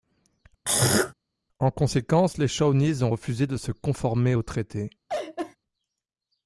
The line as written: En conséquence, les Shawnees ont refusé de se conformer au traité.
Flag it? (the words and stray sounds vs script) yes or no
yes